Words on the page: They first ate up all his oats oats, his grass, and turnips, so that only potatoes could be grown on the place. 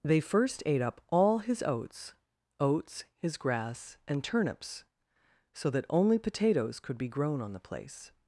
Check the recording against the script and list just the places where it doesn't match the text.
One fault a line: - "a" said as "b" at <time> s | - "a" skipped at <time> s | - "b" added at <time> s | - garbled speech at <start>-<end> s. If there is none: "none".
none